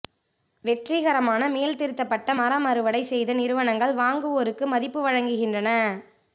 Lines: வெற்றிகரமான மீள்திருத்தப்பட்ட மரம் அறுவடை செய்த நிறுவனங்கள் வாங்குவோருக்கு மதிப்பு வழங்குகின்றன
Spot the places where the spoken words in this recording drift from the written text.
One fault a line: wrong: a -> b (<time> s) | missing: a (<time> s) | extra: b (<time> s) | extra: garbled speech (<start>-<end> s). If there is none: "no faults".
no faults